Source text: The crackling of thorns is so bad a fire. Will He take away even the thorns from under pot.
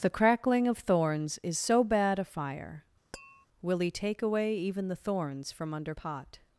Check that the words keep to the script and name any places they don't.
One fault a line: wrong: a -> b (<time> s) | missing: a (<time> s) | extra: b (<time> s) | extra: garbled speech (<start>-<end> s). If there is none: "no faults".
no faults